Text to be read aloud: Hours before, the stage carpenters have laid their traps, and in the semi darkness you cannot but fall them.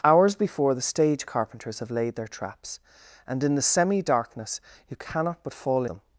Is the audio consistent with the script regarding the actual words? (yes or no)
yes